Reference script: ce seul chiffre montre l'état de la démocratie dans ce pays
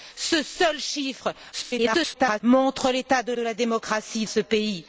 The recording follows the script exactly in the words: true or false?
false